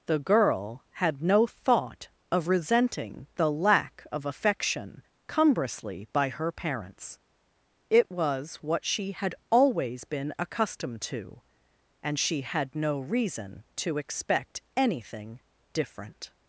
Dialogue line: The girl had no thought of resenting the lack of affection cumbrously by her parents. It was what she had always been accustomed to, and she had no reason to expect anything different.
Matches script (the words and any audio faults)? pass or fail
pass